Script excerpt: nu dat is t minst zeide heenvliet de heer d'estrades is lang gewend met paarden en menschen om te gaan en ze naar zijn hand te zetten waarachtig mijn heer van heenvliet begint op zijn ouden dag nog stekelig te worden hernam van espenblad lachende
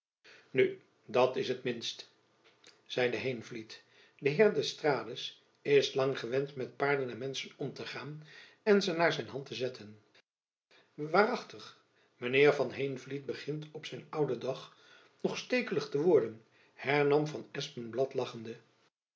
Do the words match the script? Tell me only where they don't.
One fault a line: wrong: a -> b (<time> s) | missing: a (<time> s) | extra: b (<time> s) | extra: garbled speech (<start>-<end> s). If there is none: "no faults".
no faults